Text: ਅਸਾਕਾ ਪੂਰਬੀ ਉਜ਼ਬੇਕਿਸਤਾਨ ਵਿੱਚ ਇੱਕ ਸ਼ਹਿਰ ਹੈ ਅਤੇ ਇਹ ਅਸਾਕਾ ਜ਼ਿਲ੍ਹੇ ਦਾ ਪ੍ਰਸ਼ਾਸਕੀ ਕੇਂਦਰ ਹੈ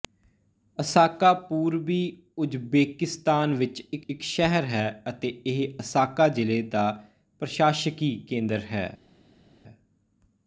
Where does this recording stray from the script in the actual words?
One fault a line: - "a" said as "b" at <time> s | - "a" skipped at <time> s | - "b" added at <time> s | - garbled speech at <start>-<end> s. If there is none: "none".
- "ਇੱਕ" added at 4.1 s